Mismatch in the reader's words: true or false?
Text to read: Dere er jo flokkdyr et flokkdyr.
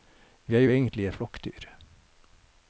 true